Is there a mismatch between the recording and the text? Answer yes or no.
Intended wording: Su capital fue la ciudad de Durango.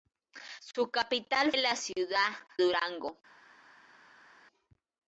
yes